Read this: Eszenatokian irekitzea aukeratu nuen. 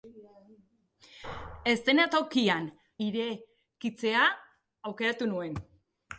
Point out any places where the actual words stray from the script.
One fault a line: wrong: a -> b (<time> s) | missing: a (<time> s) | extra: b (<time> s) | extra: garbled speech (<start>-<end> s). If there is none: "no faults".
no faults